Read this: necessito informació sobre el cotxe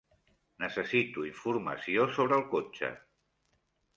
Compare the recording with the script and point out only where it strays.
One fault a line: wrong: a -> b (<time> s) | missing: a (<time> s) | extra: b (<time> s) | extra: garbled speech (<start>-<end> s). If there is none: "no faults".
no faults